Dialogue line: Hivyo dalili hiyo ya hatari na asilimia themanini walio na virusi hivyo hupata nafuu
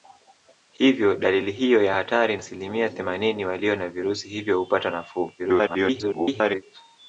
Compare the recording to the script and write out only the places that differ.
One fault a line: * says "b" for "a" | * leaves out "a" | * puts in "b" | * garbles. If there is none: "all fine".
* leaves out "na"
* garbles